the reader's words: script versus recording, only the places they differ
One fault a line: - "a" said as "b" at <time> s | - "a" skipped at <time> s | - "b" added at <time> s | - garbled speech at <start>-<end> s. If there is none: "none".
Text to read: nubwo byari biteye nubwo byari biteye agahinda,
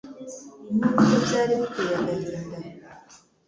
- "nubwo byari biteye" skipped at 1.9 s